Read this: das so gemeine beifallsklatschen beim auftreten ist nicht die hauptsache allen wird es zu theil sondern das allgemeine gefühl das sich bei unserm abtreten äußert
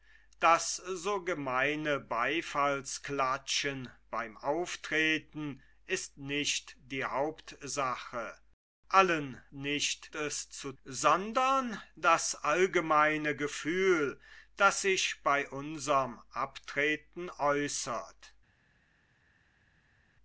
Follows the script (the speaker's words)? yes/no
no